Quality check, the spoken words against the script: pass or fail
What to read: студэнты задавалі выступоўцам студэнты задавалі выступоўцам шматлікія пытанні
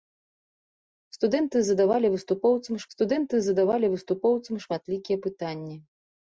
pass